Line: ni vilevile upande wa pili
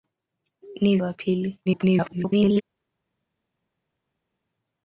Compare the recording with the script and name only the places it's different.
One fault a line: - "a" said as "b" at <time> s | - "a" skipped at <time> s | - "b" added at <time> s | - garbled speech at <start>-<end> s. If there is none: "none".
- "vilevile upande" skipped at 1.0 s
- garbled speech at 1.7-2.6 s